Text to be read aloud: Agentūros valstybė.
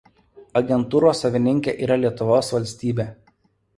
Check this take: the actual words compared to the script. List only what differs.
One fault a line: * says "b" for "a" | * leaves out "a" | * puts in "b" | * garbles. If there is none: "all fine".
* puts in "savininkė yra Lietuvos"